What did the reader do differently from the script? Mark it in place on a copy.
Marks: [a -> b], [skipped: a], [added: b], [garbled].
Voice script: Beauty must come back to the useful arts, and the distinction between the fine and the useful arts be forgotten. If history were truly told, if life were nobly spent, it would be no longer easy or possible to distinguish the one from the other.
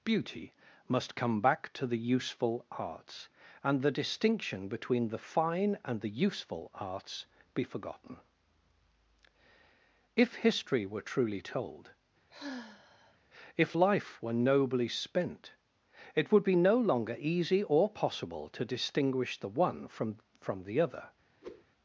Beauty must come back to the useful arts, and the distinction between the fine and the useful arts be forgotten. If history were truly told, if life were nobly spent, it would be no longer easy or possible to distinguish the one from [added: from] the other.